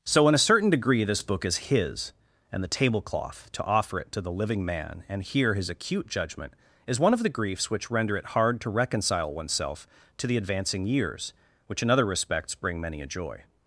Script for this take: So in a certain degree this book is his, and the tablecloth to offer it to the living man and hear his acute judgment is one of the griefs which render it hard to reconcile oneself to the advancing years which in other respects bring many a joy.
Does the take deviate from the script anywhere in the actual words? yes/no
no